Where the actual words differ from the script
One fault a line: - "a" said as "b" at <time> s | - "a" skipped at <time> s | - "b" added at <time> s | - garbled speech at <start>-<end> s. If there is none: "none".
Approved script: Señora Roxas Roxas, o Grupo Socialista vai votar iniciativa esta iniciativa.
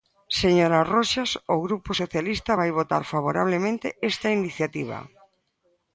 - "Roxas" skipped at 1.3 s
- "iniciativa" said as "favorablemente" at 3.1 s